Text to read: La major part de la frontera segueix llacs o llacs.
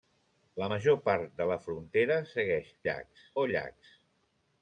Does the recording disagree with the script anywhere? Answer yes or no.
no